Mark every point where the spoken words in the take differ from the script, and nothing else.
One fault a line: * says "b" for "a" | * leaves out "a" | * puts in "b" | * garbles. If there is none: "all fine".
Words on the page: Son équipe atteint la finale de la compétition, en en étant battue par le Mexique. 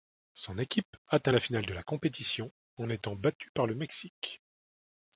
* leaves out "en"